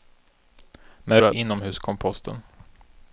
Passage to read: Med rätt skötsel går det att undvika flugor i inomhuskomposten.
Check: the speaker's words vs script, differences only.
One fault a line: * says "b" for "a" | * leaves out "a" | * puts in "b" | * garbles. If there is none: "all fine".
* leaves out "rätt skötsel går"
* leaves out "undvika flugor i"